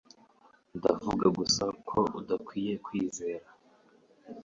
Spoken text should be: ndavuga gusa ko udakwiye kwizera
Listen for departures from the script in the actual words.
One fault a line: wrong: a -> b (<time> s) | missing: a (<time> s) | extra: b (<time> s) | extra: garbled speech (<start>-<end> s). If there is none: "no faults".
no faults